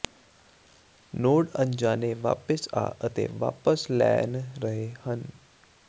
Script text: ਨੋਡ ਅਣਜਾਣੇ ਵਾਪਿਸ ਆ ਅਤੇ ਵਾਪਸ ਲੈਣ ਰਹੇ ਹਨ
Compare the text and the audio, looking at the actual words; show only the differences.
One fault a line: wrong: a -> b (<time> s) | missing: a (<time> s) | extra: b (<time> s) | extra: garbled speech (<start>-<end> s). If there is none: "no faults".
no faults